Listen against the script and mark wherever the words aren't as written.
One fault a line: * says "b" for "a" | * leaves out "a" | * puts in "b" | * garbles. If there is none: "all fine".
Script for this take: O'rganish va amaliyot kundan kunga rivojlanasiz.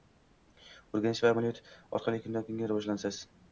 * puts in "orqali"